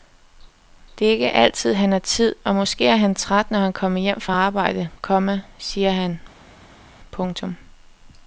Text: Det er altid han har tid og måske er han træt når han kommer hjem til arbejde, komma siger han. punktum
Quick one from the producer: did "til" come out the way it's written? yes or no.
no